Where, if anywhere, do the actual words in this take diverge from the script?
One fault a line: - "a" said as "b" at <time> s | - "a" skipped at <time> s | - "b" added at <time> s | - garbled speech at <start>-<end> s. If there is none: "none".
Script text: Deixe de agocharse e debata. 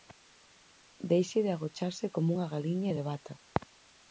- "como unha galiña" added at 2.1 s